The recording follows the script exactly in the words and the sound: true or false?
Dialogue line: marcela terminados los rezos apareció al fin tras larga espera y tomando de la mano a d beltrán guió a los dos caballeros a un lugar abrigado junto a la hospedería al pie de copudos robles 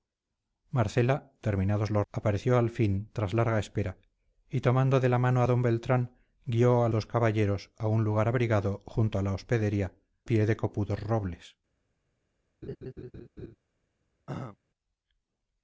false